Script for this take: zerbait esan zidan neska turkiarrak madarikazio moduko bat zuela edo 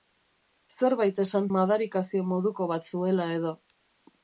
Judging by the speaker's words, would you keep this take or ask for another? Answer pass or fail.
fail